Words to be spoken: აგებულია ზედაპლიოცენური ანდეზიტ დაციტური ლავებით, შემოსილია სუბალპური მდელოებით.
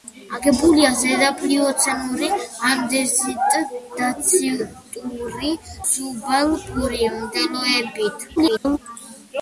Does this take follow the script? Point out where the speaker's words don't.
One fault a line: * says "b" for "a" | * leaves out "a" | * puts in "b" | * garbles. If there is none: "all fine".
* leaves out "ლავებით შემოსილია"
* garbles